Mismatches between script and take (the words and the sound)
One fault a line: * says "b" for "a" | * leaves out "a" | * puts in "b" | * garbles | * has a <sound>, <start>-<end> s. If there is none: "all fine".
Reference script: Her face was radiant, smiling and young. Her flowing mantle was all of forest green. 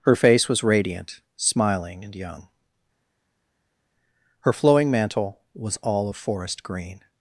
all fine